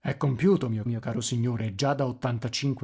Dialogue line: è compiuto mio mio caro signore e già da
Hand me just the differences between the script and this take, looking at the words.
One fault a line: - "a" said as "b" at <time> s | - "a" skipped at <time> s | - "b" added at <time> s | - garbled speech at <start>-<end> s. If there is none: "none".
none